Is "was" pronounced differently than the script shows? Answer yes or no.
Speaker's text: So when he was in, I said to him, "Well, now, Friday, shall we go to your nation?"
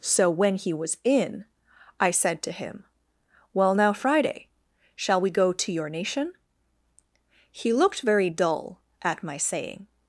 no